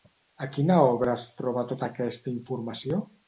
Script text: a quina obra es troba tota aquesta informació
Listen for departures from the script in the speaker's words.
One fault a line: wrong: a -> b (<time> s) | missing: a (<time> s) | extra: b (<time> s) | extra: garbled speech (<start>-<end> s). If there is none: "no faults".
no faults